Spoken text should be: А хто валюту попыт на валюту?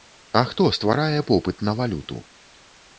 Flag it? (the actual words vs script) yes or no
yes